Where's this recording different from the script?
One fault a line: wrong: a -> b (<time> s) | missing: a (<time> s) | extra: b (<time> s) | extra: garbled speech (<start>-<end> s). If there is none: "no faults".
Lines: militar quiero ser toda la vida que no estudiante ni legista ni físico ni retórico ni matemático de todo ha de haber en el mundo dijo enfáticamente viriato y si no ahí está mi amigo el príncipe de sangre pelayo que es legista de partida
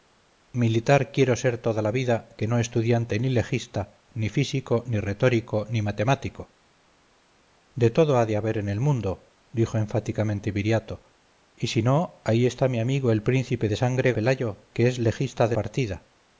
no faults